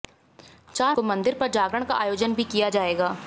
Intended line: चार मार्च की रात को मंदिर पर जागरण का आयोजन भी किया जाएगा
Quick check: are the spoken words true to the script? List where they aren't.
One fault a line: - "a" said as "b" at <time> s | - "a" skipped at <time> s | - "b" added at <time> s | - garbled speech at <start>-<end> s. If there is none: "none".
- "मार्च की रात" skipped at 0.9 s